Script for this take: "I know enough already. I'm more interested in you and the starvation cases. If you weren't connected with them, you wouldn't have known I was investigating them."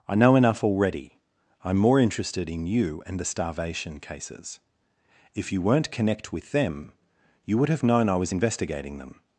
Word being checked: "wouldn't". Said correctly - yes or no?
no